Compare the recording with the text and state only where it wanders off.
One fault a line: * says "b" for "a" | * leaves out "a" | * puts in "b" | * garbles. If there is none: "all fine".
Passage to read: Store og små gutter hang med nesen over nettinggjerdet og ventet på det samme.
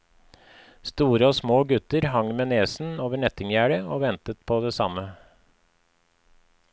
all fine